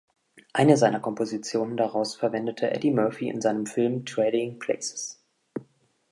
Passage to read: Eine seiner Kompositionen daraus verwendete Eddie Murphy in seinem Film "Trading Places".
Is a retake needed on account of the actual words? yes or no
no